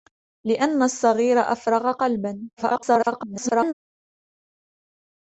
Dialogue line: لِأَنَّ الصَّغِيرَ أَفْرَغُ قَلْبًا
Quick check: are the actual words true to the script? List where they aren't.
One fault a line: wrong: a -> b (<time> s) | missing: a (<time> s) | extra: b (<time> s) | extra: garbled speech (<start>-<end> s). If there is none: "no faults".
extra: garbled speech (2.6-3.7 s)